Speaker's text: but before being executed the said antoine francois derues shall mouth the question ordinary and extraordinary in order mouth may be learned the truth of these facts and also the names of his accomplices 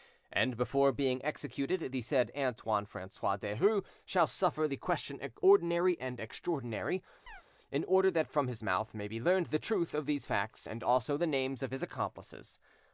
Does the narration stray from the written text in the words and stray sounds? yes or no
yes